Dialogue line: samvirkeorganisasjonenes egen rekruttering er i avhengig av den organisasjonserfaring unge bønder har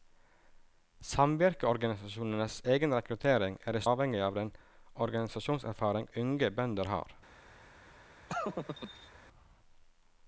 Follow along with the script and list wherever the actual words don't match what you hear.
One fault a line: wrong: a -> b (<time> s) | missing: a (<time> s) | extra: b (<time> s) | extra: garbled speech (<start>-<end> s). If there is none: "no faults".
no faults